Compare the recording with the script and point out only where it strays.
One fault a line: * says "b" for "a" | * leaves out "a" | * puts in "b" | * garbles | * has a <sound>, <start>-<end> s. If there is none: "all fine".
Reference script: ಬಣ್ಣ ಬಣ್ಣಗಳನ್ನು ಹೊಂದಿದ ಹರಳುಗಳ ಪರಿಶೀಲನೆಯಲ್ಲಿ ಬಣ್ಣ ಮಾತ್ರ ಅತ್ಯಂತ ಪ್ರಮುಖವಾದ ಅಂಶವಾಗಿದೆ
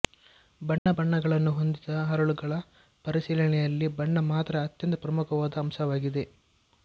* has a dropout, 0.8-0.9 s